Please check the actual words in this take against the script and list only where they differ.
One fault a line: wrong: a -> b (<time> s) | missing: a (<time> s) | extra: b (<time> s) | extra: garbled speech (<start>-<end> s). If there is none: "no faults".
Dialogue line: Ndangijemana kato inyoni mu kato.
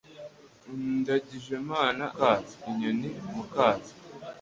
no faults